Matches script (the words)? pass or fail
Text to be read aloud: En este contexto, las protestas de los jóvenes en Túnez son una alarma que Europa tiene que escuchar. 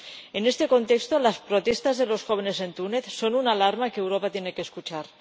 pass